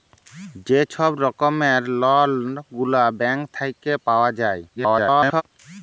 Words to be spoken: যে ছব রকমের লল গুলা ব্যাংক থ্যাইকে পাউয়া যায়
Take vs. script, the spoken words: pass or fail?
fail